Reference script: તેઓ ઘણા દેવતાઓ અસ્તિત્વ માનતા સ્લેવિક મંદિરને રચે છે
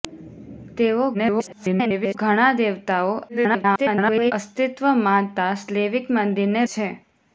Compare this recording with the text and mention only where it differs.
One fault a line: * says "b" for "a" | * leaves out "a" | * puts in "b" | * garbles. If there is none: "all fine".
* garbles
* garbles
* leaves out "રચે"